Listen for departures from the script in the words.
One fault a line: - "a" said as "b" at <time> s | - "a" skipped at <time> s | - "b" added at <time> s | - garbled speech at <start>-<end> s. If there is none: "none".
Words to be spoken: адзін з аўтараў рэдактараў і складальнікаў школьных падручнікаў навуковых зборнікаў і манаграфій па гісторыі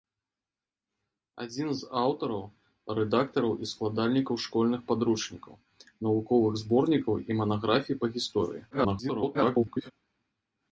- garbled speech at 8.7-9.9 s